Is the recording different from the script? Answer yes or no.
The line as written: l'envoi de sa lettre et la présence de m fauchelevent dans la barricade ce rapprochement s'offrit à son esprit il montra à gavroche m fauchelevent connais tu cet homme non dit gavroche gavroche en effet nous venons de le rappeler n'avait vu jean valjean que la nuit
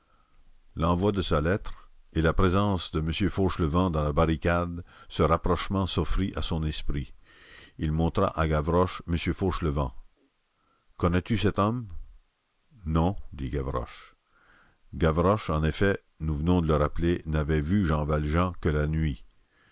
no